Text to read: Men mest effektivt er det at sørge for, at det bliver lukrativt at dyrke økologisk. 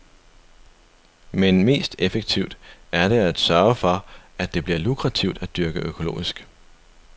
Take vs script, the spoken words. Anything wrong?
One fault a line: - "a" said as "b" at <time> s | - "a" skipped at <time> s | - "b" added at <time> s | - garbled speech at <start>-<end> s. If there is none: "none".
none